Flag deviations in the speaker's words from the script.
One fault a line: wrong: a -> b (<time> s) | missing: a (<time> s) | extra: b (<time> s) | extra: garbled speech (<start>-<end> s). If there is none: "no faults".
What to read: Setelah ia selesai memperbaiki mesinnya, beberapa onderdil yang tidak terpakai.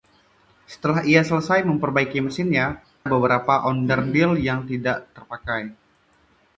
no faults